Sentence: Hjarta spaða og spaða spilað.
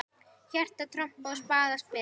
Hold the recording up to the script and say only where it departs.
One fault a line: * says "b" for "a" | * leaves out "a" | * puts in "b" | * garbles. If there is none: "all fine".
* says "trompað" for "spaða"